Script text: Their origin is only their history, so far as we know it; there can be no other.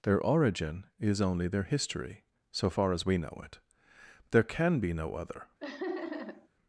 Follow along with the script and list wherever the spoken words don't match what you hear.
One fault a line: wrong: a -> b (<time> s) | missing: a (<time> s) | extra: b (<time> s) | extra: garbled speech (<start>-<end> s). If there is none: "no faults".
no faults